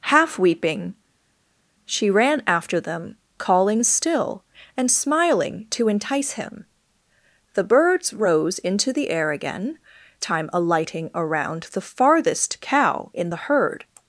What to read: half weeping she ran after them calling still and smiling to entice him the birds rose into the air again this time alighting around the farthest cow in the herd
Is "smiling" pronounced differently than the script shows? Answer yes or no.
no